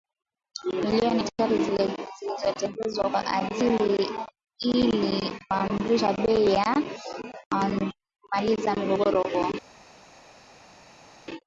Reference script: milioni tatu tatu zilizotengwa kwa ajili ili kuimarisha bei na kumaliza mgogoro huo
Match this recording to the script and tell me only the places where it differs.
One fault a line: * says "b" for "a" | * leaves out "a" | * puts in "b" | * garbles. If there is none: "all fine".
* leaves out "tatu"